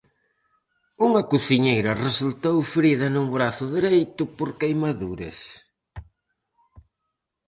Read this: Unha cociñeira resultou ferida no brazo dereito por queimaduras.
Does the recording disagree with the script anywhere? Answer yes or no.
no